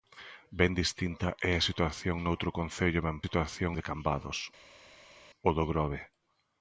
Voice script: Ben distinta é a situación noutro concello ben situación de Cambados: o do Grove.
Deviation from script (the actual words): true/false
false